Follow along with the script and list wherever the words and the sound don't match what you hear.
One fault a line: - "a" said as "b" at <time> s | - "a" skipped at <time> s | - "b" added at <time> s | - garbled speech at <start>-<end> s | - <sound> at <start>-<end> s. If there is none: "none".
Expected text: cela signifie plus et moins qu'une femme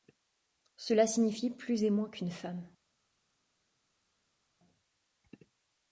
none